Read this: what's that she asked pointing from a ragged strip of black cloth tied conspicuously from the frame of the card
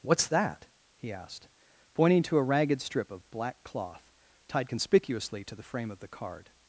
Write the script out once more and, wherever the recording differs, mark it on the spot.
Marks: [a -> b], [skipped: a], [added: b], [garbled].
what's that [she -> he] asked pointing [from -> to] a ragged strip of black cloth tied conspicuously [from -> to] the frame of the card